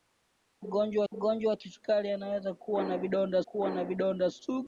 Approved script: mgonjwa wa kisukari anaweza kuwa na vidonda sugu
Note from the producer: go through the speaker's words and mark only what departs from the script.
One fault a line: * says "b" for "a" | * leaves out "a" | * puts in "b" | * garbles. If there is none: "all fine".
* puts in "mgonjwa"
* puts in "kuwa na vidonda"